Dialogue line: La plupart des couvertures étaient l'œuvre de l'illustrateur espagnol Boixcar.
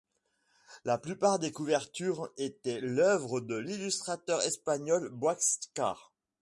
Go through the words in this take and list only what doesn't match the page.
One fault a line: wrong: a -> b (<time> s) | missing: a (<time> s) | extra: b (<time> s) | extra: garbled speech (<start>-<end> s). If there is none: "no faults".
no faults